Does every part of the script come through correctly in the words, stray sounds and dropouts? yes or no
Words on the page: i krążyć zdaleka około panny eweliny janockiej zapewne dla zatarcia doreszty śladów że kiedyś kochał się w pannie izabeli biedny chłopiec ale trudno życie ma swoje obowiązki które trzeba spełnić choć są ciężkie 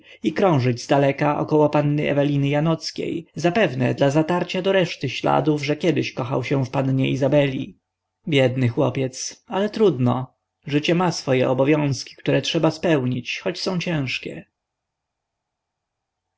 yes